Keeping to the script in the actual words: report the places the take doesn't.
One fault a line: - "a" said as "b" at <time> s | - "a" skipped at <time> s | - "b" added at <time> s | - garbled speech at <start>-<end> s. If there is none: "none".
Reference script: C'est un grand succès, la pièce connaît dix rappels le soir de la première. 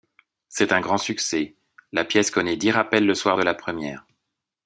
none